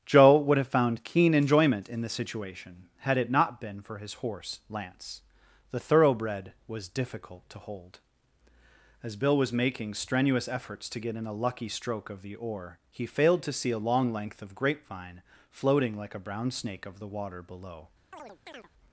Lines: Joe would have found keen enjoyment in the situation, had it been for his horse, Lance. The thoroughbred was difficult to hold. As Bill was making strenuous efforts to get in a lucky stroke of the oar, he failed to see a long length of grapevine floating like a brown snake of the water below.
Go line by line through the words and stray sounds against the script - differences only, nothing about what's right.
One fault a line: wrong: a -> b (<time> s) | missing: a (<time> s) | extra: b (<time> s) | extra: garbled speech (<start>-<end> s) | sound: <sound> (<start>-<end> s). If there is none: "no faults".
extra: not (3.3 s)
sound: chirp (18.1-18.7 s)